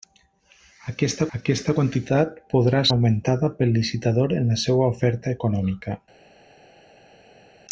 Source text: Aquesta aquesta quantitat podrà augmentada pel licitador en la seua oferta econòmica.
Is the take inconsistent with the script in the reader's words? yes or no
no